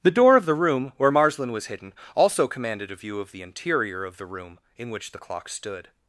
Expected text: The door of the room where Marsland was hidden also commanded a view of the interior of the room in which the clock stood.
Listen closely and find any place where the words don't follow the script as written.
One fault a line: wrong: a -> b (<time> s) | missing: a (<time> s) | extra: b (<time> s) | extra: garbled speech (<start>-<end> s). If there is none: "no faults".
no faults